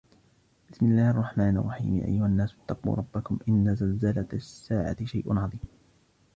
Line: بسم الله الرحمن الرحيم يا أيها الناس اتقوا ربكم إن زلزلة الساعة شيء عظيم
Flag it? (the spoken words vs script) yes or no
no